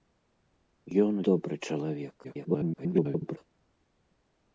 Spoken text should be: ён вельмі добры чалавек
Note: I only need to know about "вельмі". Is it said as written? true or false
false